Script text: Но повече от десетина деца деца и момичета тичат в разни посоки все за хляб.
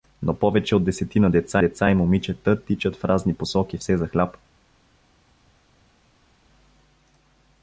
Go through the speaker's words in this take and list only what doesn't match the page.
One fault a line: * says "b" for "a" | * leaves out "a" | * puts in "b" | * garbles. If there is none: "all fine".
all fine